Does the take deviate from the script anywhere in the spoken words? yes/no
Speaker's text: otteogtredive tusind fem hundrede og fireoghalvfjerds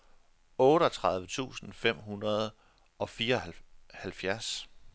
no